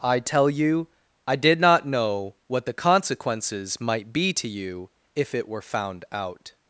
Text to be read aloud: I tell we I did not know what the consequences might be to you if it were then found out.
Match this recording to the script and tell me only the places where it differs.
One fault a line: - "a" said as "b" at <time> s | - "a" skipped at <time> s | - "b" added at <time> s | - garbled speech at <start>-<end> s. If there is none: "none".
- "we" said as "you" at 0.5 s
- "then" skipped at 5.6 s